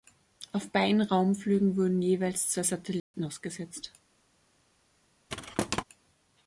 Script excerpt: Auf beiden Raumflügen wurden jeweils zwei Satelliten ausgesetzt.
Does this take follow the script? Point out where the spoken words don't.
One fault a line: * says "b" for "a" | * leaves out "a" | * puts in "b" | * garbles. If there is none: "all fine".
all fine